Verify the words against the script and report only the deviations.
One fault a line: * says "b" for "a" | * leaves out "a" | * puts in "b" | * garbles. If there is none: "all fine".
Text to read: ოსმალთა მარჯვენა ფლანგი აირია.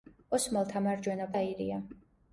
* leaves out "ფლანგი"